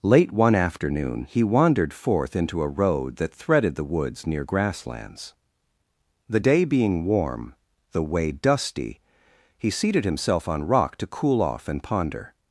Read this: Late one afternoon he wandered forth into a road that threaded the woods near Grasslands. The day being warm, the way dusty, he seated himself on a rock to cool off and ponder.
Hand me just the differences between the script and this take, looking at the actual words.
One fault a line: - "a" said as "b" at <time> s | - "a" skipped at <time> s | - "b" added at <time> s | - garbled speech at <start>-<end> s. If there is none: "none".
- "a" skipped at 10.7 s